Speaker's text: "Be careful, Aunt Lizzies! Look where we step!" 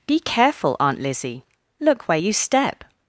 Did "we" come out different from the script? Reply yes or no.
yes